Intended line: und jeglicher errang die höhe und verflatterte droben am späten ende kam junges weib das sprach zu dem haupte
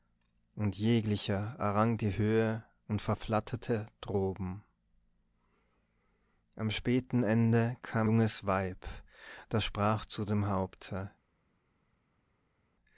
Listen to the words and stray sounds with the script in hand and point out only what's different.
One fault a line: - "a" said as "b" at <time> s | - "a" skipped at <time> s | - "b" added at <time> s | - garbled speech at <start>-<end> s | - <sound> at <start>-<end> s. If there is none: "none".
none